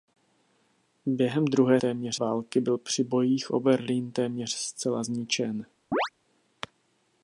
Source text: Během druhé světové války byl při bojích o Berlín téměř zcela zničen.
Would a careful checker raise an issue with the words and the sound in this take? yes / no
yes